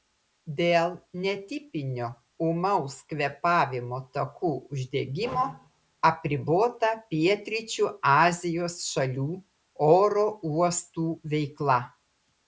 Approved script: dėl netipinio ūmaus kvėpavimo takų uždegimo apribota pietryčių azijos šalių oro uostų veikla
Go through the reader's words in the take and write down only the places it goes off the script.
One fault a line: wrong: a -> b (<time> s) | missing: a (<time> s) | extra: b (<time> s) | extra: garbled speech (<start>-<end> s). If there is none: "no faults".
no faults